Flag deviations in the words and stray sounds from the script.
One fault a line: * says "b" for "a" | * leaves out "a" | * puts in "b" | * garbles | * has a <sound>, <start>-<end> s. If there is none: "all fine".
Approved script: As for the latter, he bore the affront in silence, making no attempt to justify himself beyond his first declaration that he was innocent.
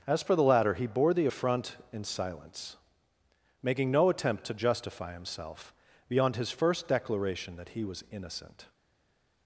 all fine